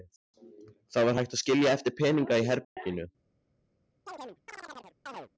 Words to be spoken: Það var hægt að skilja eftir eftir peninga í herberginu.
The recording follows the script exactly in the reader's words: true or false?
false